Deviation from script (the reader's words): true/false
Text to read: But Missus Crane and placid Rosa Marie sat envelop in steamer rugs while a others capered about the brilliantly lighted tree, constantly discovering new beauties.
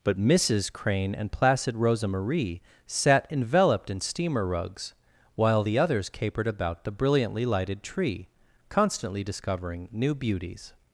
true